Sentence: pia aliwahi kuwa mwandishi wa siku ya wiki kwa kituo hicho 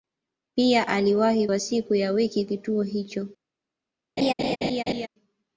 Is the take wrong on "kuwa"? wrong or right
wrong